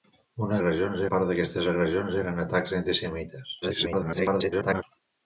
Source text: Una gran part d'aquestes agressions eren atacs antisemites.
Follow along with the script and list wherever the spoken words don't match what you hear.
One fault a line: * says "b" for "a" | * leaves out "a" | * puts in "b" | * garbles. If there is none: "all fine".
* says "agressions" for "gran"
* garbles